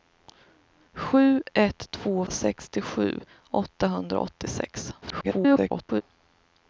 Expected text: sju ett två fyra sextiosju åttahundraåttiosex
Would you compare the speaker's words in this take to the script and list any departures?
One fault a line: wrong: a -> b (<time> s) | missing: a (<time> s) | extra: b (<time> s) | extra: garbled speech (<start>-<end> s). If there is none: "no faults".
missing: fyra (2.2 s)
extra: garbled speech (5.0-6.0 s)